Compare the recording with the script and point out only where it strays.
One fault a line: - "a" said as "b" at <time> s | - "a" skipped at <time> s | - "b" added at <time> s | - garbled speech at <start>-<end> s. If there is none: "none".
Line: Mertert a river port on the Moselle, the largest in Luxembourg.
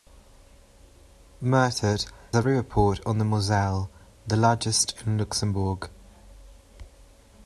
none